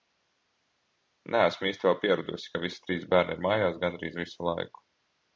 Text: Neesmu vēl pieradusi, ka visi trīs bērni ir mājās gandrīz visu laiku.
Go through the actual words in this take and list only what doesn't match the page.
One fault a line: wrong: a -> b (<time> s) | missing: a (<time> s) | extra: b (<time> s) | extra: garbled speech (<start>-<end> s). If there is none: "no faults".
extra: īsti (1.7 s)